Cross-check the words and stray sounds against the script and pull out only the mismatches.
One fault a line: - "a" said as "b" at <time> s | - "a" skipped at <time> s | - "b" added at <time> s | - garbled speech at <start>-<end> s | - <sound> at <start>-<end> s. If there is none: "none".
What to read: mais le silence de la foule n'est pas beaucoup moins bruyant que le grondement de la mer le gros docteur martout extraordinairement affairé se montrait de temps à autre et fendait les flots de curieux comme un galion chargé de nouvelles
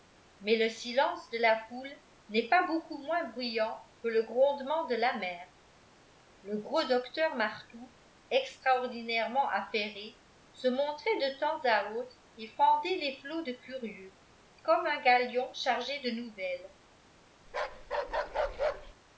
- bark at 17.5-18.9 s